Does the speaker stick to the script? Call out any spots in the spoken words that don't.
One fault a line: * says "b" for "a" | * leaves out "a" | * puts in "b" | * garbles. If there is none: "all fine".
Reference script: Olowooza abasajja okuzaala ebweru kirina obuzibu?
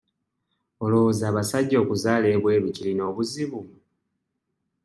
all fine